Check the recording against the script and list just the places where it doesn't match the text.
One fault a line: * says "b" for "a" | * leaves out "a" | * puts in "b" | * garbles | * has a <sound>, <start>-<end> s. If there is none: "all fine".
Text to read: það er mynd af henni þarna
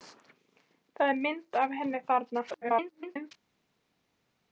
* garbles